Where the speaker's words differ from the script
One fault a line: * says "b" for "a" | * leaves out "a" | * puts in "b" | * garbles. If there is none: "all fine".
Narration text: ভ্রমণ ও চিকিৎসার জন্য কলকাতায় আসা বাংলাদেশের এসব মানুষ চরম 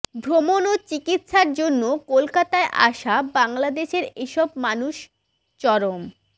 all fine